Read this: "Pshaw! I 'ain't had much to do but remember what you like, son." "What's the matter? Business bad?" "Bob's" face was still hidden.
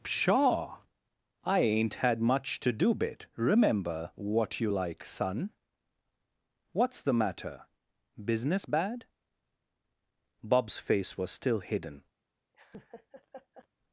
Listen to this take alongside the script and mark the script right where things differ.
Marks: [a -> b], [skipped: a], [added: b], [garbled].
"Pshaw! I 'ain't had much to do [but -> bit] remember what you like, son." "What's the matter? Business bad?" "Bob's" face was still hidden.